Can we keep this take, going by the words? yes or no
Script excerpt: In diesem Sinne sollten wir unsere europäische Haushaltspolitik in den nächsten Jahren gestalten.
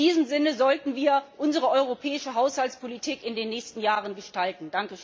yes